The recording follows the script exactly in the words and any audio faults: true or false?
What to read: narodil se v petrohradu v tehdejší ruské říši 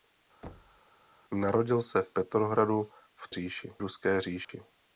false